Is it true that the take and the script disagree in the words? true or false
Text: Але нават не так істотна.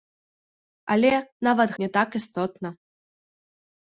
false